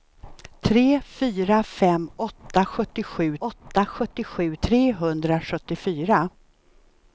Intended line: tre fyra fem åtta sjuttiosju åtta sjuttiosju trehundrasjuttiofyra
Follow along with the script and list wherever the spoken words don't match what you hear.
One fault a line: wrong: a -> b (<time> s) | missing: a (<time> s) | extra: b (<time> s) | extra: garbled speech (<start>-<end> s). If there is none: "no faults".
no faults